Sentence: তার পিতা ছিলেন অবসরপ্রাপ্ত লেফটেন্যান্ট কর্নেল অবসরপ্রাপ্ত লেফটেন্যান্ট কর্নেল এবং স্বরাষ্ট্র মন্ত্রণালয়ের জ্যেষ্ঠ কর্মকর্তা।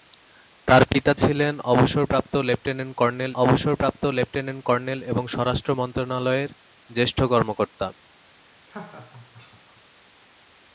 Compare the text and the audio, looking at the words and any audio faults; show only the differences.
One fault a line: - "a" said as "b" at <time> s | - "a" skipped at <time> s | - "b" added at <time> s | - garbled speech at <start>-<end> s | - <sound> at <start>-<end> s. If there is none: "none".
- laugh at 8.7-9.8 s